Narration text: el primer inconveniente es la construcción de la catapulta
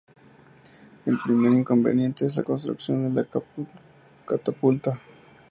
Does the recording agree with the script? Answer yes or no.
yes